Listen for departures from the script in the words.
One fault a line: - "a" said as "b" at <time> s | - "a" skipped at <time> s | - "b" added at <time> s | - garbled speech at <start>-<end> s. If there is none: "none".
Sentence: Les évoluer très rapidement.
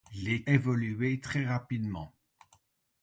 none